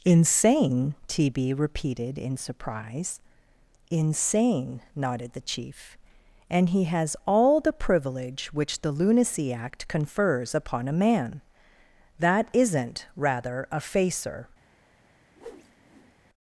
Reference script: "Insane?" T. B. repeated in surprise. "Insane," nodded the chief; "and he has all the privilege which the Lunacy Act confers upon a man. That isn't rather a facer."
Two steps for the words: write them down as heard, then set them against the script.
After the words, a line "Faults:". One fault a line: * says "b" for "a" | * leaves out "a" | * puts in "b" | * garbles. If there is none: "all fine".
"Insane?" T. B. repeated in surprise. "Insane," nodded the chief; "and he has all the privilege which the Lunacy Act confers upon a man. That isn't rather a facer."
Faults:
all fine